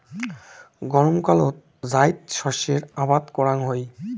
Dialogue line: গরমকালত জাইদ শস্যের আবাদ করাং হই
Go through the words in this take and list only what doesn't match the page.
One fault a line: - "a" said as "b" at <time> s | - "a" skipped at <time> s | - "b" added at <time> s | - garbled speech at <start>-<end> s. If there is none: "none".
none